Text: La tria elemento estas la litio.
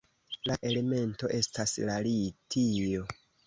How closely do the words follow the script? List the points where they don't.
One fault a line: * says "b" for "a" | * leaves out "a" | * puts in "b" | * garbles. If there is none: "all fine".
* leaves out "tria"